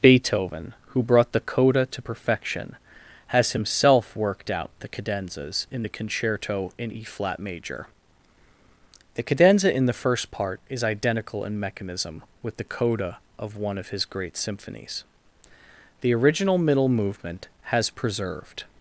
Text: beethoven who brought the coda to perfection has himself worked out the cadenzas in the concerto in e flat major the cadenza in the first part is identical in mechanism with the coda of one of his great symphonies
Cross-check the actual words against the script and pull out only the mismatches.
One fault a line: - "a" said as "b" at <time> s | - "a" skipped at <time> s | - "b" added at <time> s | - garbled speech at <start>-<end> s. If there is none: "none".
- "the original middle movement has preserved" added at 16.0 s